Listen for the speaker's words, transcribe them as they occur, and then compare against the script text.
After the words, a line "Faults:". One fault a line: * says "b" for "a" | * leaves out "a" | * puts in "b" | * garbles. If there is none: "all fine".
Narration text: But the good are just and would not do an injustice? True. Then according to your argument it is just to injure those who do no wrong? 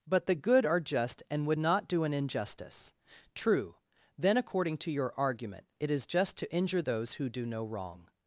But the good are just and would not do an injustice? True. Then according to your argument it is just to injure those who do no wrong?
Faults:
all fine